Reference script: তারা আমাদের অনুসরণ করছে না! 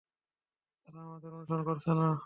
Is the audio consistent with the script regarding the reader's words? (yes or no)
yes